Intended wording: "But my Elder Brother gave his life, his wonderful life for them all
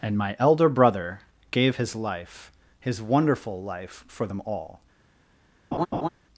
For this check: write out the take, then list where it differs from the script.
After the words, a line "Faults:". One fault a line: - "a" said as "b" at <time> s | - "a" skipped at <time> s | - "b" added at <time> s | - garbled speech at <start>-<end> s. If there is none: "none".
"And my Elder Brother gave his life, his wonderful life for them all
Faults:
- "But" said as "And" at 0.0 s